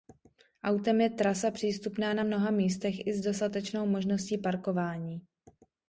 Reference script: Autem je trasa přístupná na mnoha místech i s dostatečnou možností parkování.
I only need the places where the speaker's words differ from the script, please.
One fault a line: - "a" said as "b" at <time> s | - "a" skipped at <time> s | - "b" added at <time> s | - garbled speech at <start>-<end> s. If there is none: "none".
none